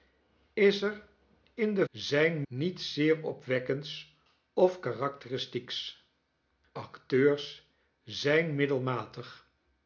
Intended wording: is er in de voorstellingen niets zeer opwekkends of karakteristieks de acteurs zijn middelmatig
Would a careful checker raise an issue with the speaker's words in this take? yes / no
yes